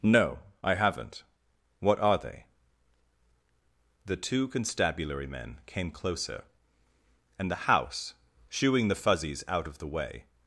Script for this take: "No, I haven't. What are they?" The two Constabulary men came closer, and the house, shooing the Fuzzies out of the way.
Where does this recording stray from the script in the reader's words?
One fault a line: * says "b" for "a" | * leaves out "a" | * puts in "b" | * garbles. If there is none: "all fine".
all fine